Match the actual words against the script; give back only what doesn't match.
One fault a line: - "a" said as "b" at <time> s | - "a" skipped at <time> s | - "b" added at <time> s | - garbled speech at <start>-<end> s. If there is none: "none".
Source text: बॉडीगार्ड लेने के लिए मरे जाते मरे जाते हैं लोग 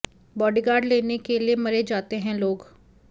- "मरे जाते" skipped at 2.2 s